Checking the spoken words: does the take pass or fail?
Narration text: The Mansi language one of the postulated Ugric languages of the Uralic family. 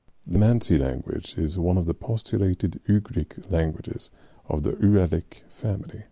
fail